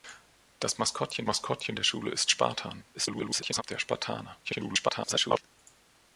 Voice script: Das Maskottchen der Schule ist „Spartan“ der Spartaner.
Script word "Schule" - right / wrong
right